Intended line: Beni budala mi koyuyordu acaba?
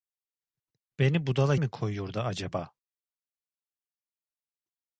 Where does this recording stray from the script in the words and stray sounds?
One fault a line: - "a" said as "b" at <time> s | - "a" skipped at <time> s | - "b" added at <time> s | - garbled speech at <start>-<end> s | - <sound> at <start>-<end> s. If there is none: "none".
none